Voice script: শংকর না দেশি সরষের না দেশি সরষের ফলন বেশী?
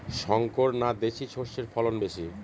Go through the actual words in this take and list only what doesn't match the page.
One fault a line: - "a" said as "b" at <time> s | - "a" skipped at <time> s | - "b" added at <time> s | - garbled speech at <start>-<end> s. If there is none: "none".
- "না দেশি সরষের" skipped at 1.6 s